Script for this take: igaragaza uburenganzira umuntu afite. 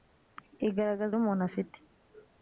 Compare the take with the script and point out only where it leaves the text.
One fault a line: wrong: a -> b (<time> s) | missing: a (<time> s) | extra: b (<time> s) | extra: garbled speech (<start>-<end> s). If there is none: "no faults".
missing: uburenganzira (1.1 s)